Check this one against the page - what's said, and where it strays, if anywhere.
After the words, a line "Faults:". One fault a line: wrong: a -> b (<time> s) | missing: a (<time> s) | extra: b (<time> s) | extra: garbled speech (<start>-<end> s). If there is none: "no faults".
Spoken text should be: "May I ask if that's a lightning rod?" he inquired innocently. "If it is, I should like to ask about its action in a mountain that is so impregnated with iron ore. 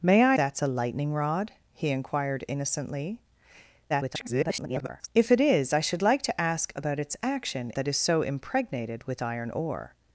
"May I that's a lightning rod?" he inquired innocently. [garbled] "If it is, I should like to ask about its action that is so impregnated with iron ore.
Faults:
missing: ask if (0.4 s)
extra: garbled speech (3.9-5.1 s)
missing: in a mountain (7.7 s)